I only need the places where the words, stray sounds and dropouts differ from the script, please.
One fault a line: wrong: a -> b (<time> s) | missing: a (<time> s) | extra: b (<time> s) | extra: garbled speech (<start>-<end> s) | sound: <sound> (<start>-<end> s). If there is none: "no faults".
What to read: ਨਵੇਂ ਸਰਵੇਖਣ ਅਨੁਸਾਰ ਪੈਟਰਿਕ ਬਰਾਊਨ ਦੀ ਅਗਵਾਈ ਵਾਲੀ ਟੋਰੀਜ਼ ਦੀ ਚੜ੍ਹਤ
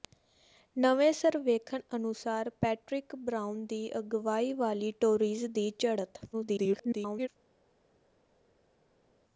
extra: garbled speech (6.3-7.3 s)